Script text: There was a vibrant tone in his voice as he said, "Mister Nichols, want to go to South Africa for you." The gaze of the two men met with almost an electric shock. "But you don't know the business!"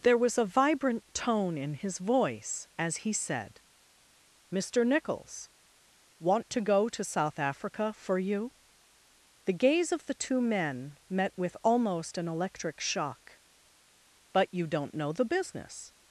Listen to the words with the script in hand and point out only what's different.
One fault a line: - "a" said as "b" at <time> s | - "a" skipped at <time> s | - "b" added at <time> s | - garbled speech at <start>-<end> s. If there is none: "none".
none